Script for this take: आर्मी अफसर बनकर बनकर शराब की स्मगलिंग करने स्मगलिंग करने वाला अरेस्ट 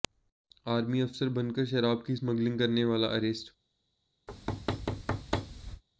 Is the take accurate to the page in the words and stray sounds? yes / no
no